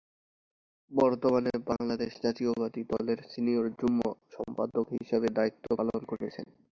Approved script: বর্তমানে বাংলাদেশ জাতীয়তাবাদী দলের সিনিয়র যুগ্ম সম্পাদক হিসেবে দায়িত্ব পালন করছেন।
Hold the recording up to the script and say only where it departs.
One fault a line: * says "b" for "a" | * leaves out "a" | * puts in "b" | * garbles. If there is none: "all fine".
all fine